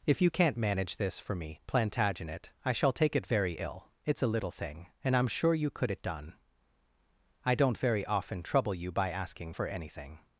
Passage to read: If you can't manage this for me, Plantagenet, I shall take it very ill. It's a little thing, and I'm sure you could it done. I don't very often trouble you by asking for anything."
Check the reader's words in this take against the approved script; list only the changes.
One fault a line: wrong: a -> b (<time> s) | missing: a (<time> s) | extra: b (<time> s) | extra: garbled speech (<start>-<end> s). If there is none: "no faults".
no faults